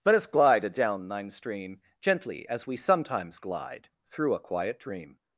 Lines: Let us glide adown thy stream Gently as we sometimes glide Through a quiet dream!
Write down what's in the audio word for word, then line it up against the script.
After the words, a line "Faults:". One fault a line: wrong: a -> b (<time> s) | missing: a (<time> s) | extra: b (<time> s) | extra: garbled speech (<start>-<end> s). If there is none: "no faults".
Let us glide adown thine stream Gently as we sometimes glide Through a quiet dream!
Faults:
wrong: thy -> thine (1.1 s)